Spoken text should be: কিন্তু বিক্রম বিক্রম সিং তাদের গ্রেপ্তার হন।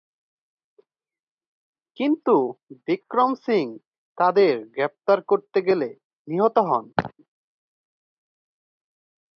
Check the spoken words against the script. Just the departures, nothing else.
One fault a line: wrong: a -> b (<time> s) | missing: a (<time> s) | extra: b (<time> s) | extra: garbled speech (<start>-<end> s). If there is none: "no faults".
missing: বিক্রম (3.3 s)
extra: করতে গেলে নিহত (5.2 s)